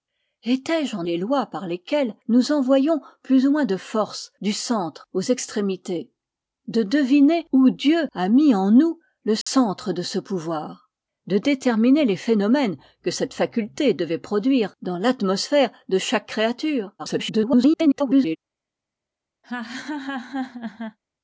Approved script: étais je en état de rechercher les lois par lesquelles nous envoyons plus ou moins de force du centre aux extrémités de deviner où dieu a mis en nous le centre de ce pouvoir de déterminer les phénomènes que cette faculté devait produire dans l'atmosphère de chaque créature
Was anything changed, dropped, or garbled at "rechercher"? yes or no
yes